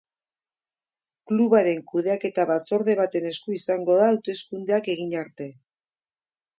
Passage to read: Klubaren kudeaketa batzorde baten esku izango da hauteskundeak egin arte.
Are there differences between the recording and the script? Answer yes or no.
no